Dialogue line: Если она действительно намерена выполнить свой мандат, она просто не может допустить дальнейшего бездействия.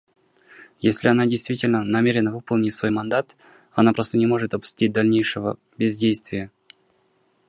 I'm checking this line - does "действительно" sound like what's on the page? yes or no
yes